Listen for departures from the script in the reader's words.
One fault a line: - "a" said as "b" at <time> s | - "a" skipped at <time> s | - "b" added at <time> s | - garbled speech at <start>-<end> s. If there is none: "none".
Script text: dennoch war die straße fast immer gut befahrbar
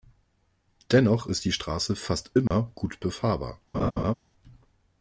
- "war" said as "ist" at 1.3 s